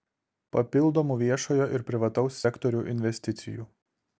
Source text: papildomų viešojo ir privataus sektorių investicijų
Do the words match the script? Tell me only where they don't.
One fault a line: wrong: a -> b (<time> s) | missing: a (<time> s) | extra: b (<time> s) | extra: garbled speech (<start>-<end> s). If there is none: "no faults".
no faults